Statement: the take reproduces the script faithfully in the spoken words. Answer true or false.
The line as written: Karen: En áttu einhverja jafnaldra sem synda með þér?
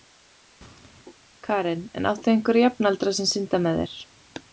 true